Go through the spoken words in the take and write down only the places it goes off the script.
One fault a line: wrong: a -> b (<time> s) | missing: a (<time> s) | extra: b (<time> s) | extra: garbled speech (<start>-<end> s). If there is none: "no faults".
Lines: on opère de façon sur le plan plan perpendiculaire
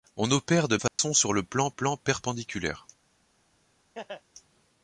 no faults